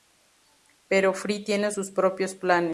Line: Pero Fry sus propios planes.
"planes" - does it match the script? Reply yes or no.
yes